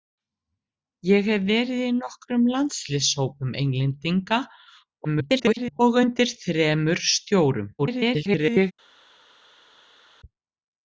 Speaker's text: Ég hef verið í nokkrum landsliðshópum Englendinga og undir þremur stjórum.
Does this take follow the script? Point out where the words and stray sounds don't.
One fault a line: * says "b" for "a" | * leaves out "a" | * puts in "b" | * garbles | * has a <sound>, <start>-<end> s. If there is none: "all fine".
* garbles
* garbles